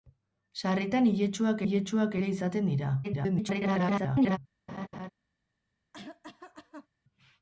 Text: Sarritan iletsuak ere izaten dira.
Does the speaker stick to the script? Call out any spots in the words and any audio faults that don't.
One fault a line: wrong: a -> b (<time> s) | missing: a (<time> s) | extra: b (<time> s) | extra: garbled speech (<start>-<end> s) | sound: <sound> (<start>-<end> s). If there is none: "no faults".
extra: iletsuak (1.6 s)
extra: garbled speech (3.0-4.4 s)
sound: laugh (4.7-5.1 s)
sound: cough (5.9-6.9 s)